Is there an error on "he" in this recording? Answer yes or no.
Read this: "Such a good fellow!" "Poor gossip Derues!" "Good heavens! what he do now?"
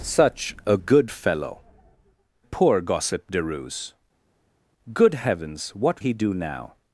no